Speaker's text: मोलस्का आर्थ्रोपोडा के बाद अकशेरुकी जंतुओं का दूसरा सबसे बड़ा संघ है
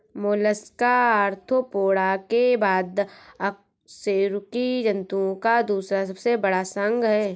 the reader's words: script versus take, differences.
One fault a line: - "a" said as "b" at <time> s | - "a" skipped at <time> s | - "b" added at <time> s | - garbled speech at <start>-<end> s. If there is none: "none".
none